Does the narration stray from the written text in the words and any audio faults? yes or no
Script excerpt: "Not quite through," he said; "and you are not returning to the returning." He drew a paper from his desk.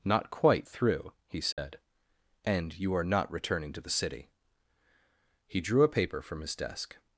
yes